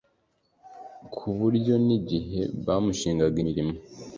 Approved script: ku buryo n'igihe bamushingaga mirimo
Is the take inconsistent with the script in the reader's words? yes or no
no